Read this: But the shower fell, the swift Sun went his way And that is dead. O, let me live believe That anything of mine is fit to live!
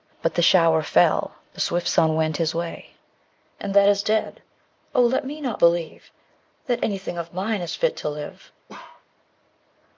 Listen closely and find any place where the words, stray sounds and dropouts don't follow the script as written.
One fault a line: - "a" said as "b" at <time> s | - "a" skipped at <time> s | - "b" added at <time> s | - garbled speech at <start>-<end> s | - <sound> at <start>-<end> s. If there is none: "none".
- "live" said as "not" at 5.4 s
- bark at 8.7-9.1 s